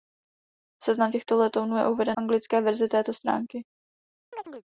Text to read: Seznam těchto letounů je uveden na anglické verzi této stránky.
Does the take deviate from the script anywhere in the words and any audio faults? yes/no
yes